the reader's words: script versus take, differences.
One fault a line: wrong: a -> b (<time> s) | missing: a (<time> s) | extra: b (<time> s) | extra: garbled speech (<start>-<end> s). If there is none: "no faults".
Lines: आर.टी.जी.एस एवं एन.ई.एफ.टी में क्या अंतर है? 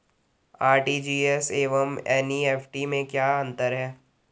no faults